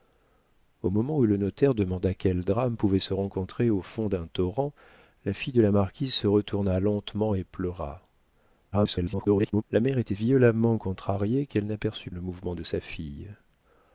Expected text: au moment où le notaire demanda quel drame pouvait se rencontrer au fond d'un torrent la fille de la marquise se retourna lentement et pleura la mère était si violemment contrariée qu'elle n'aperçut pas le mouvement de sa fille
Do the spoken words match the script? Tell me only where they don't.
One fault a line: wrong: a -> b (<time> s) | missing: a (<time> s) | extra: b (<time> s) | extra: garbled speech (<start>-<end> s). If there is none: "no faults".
extra: garbled speech (8.7-9.6 s)
missing: si (10.2 s)
missing: pas (12.1 s)